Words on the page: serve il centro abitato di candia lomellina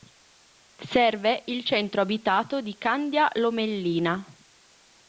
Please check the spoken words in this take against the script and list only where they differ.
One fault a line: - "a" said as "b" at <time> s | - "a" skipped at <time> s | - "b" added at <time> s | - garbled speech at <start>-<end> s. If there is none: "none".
none